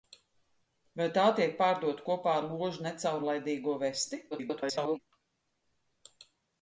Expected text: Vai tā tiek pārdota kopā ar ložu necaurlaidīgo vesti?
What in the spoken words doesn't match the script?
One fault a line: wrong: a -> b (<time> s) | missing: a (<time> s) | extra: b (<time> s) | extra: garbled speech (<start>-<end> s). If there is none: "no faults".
extra: garbled speech (4.3-5.0 s)